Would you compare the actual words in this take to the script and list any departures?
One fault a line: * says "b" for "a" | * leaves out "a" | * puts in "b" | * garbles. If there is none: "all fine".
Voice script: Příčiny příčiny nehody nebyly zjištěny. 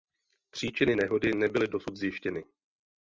* leaves out "příčiny"
* puts in "dosud"